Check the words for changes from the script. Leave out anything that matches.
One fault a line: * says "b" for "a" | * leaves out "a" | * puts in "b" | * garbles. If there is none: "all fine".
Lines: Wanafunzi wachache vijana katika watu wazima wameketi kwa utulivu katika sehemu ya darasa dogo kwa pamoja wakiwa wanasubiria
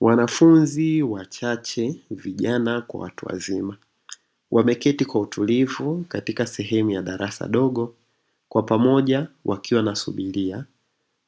* says "kwa" for "katika"